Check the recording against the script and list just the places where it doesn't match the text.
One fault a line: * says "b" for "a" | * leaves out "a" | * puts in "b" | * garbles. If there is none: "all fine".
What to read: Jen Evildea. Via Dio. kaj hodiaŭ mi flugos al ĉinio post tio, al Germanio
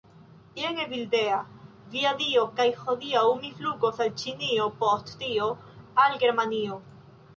all fine